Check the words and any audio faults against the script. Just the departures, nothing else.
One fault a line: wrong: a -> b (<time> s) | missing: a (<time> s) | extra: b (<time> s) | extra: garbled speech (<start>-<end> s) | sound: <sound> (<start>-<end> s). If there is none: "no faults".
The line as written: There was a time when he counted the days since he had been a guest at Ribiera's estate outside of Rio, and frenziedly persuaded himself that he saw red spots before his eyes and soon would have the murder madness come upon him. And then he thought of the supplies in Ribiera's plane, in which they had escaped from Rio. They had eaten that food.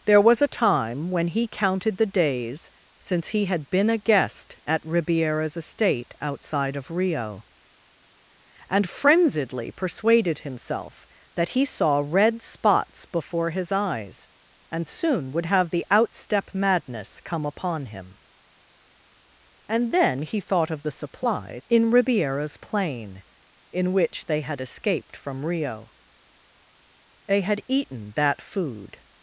wrong: murder -> outstep (15.9 s)